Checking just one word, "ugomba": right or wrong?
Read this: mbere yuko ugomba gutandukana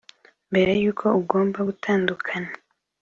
right